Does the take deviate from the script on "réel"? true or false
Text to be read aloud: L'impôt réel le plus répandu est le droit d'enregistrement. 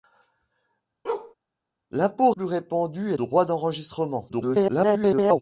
true